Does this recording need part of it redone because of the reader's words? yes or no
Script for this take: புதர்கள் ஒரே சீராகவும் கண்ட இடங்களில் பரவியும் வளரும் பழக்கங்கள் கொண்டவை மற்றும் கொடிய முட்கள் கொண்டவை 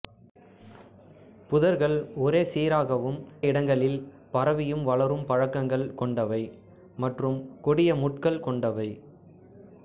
yes